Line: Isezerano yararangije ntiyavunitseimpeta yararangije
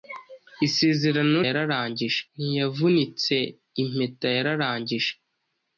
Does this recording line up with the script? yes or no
yes